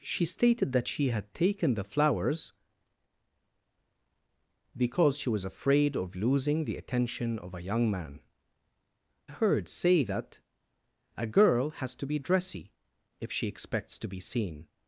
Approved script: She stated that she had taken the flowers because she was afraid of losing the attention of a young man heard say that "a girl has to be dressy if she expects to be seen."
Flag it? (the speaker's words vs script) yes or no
no